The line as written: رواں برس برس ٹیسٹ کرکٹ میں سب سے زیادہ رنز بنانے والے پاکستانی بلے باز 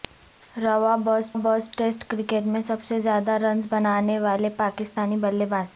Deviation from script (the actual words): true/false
false